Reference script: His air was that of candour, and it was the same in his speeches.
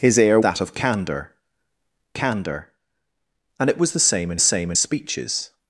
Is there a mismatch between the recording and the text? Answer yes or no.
yes